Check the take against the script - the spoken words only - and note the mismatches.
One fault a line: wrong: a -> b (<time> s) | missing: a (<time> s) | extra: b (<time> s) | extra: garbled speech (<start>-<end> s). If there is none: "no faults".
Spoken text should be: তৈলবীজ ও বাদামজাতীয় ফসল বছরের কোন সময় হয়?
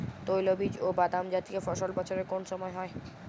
no faults